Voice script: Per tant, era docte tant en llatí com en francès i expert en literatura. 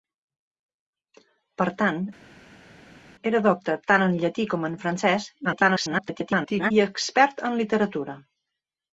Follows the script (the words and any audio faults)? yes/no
no